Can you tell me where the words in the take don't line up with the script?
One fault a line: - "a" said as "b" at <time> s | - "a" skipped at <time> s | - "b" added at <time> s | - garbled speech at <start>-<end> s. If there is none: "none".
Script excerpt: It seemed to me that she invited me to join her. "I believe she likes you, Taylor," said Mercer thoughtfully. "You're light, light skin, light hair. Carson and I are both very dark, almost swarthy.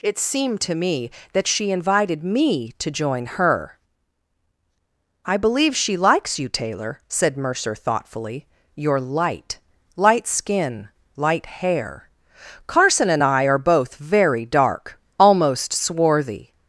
none